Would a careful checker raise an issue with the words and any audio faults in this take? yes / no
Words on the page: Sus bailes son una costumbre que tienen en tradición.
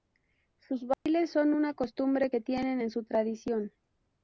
yes